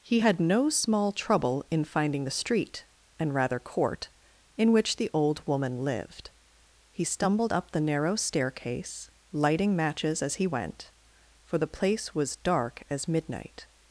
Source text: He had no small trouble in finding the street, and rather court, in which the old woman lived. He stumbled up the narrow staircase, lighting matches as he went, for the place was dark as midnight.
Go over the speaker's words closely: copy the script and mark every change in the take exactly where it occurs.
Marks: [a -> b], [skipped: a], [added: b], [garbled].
He had no small trouble in finding the street, and rather court, in which the old woman lived. He stumbled up the narrow staircase, lighting matches as he went, for the place was dark as midnight.